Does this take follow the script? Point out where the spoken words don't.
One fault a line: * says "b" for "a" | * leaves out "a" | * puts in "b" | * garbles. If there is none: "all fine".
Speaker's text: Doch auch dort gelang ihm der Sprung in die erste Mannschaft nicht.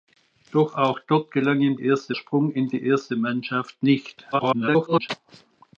* says "erste" for "der"
* garbles